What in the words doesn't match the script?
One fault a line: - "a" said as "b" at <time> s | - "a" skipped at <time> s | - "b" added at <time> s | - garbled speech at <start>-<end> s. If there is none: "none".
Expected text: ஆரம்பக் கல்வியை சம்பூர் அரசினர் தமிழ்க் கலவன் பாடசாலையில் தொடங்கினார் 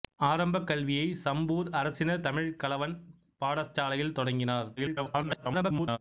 - garbled speech at 4.8-6.0 s